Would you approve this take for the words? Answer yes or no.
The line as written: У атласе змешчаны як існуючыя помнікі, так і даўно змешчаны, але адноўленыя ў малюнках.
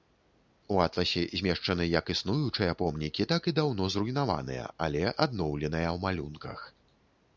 no